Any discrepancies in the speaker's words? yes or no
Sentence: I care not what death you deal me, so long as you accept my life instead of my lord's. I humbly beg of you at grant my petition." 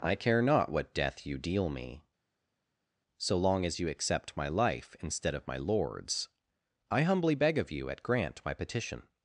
no